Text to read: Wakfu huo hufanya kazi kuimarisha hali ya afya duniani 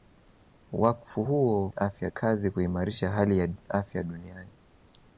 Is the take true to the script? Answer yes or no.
no